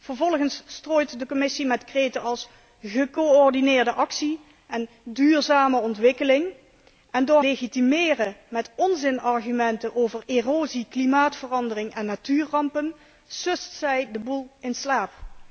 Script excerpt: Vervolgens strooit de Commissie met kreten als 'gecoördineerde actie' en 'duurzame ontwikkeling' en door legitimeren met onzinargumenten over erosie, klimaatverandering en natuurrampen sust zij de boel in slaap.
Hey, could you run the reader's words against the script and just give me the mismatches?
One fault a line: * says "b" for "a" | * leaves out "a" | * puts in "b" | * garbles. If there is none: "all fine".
all fine